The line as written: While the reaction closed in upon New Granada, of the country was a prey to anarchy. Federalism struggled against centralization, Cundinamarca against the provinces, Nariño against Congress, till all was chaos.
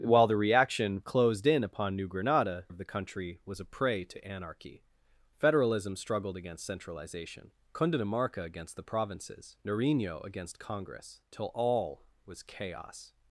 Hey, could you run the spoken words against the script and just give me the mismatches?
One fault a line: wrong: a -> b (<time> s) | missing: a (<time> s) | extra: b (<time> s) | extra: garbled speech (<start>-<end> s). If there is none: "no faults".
no faults